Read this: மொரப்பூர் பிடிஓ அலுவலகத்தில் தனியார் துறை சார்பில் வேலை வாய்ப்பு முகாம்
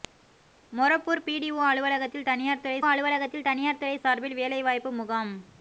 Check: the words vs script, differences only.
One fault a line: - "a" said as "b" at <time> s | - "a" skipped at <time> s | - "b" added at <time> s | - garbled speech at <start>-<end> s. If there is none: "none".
- "அலுவலகத்தில் தனியார் துறை" added at 2.9 s